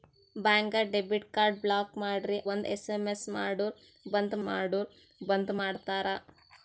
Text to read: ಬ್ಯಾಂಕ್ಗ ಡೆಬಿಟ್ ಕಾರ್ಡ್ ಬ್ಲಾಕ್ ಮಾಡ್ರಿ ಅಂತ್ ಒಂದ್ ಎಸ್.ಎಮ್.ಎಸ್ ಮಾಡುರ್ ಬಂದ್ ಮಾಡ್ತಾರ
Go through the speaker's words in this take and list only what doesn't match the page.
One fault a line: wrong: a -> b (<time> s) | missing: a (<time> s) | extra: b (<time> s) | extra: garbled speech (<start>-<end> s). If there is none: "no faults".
missing: ಅಂತ್ (2.4 s)
extra: ಮಾಡುರ್ ಬಂದ್ (4.5 s)